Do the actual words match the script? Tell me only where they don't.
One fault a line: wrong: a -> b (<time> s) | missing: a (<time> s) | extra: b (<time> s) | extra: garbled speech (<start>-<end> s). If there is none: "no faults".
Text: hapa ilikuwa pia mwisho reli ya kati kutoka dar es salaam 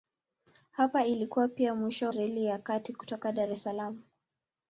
no faults